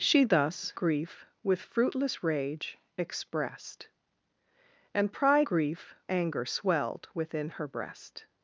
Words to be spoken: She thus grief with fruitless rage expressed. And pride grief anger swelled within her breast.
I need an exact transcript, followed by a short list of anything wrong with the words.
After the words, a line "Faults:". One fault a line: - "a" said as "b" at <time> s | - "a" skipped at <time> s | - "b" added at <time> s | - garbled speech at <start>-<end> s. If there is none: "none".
She thus grief with fruitless rage expressed. And pride grief anger swelled within her breast.
Faults:
none